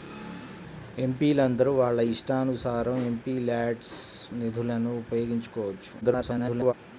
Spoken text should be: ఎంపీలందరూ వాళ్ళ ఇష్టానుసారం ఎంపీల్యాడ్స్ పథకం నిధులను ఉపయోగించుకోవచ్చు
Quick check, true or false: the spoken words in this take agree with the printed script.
false